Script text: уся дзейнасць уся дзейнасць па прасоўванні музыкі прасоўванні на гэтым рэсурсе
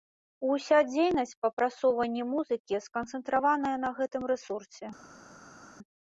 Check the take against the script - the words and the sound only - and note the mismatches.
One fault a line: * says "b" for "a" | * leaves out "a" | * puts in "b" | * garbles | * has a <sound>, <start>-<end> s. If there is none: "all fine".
* leaves out "уся дзейнасць"
* says "сканцэнтраваная" for "прасоўванні"